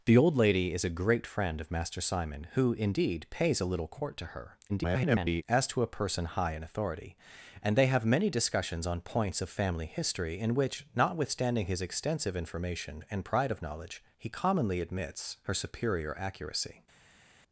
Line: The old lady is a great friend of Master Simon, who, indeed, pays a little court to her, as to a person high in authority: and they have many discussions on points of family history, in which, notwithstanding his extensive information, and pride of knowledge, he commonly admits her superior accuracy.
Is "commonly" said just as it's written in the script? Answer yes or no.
yes